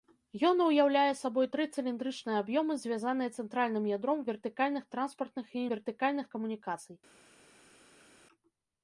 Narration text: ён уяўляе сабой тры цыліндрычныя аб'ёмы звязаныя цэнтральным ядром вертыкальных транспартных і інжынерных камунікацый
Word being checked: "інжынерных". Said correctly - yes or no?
no